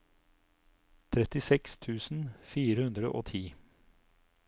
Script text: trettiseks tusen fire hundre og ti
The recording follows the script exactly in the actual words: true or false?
true